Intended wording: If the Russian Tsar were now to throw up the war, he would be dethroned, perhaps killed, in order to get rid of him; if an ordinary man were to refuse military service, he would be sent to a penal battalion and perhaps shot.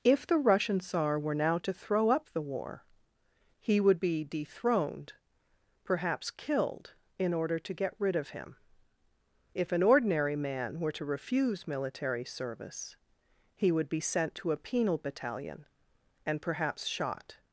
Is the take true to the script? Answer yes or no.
yes